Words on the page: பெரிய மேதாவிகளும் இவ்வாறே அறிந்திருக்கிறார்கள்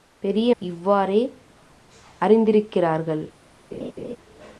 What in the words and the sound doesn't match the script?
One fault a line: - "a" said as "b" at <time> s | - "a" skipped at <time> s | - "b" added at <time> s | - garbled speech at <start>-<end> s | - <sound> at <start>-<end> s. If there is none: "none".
- "மேதாவிகளும்" skipped at 0.6 s
- laugh at 3.7-4.2 s